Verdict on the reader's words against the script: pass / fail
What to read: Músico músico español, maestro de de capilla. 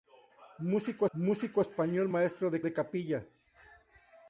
pass